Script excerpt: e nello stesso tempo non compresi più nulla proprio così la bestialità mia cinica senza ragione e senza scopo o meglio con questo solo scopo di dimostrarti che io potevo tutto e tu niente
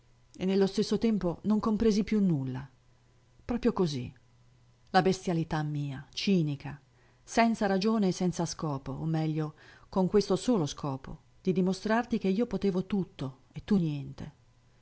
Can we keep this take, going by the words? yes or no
yes